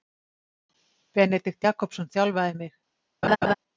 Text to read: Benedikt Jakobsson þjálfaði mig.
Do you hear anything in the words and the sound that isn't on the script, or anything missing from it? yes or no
yes